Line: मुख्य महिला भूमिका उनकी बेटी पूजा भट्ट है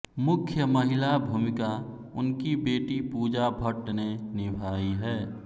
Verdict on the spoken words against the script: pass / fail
fail